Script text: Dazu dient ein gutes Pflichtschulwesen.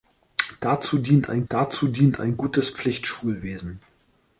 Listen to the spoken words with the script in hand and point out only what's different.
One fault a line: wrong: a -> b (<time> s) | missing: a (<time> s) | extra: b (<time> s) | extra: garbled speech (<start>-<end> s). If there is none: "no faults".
extra: dazu dient ein (1.5 s)